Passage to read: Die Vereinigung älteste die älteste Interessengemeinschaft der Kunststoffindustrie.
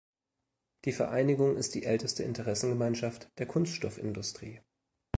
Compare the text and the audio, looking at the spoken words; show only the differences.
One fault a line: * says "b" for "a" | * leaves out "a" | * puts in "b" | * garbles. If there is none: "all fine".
* says "ist" for "älteste"